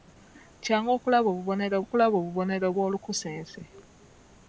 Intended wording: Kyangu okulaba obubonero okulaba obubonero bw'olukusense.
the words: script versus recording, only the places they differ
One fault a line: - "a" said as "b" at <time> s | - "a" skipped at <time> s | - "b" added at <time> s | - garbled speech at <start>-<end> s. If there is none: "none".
none